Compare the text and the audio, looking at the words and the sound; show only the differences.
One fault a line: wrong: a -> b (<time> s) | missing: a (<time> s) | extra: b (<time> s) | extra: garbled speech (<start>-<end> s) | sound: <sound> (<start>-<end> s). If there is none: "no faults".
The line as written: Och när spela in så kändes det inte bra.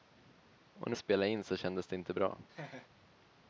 sound: laugh (2.5-2.9 s)